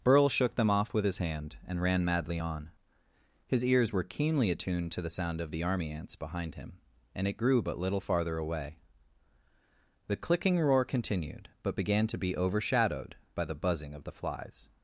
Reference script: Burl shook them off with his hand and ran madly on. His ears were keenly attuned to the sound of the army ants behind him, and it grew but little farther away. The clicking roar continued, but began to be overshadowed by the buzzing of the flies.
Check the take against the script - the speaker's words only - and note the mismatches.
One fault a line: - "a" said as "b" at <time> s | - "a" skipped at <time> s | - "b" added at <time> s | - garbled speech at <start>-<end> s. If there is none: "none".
none